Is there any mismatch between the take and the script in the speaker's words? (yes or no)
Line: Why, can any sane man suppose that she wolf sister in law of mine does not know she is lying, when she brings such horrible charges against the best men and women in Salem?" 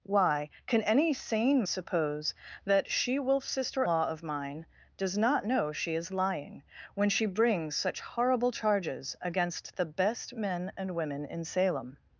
yes